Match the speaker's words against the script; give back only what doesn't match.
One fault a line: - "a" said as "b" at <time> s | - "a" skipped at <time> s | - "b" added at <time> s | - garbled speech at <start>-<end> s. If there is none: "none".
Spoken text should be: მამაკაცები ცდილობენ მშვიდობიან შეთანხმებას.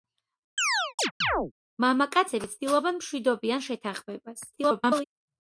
- garbled speech at 4.5-5.1 s